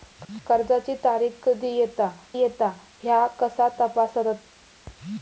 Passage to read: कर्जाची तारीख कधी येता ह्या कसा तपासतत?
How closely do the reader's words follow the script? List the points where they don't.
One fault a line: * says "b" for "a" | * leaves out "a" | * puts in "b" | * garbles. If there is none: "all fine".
* puts in "येता"